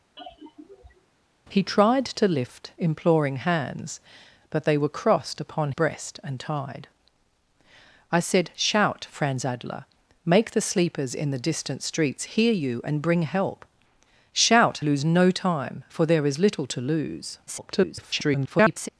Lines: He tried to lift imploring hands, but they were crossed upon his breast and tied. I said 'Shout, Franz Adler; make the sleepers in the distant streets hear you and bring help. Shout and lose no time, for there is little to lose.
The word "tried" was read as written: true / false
true